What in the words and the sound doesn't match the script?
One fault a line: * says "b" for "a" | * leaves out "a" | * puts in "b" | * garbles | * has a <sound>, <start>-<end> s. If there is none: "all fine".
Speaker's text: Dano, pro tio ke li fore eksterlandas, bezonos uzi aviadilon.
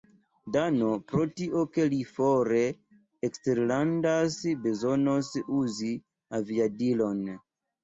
all fine